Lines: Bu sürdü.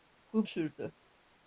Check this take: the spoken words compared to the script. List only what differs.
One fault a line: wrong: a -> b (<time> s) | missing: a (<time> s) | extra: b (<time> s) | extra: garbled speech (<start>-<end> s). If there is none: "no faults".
no faults